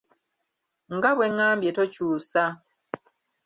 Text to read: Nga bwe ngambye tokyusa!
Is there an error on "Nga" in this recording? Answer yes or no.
no